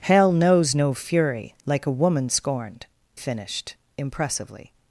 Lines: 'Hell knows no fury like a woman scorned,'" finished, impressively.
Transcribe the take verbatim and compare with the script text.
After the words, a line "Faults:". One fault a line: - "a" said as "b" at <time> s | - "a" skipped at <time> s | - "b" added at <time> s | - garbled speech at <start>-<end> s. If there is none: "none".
'Hell knows no fury like a woman scorned,'" finished, impressively.
Faults:
none